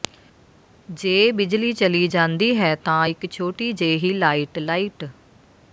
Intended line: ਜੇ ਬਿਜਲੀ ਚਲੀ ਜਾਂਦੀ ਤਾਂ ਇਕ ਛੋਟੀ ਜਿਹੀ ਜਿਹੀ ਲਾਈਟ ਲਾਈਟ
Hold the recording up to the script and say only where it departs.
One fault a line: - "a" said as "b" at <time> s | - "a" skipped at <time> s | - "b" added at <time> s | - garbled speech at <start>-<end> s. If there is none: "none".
- "ਹੈ" added at 2.6 s
- "ਜਿਹੀ" skipped at 4.1 s